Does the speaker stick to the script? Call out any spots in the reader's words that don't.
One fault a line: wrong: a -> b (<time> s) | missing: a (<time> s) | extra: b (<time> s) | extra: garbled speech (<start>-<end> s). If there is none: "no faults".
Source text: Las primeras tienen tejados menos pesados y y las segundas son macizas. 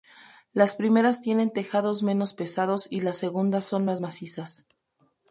missing: y (3.0 s)
extra: más (3.8 s)